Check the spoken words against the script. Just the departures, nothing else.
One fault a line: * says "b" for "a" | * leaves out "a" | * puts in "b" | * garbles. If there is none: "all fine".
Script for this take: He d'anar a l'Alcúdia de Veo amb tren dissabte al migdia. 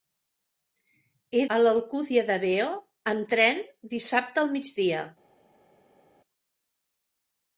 * leaves out "d'anar"